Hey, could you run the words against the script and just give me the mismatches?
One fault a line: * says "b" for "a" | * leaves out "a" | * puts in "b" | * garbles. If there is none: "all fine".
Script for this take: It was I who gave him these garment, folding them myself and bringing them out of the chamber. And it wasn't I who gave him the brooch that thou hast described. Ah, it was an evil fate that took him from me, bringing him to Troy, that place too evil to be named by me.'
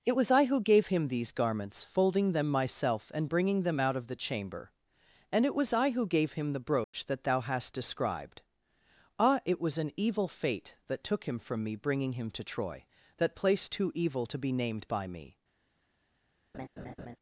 * says "garments" for "garment"
* says "was" for "wasn't"